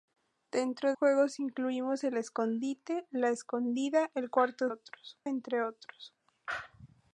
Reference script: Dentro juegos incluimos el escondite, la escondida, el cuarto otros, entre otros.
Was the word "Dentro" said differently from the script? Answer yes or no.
no